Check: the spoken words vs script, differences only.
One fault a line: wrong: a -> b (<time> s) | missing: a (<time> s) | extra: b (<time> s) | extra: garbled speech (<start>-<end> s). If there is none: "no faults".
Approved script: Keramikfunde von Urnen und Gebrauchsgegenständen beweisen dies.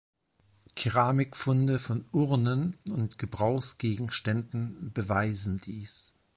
no faults